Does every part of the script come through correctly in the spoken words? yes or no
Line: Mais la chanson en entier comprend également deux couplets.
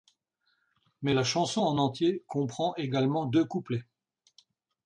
yes